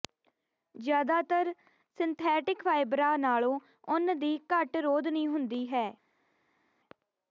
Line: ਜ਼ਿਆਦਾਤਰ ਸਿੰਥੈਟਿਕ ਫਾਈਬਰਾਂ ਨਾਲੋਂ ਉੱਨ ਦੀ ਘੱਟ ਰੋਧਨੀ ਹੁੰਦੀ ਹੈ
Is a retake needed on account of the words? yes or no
no